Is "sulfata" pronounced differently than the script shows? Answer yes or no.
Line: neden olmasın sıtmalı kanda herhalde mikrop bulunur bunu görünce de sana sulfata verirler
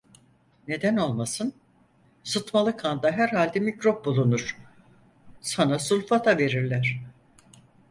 no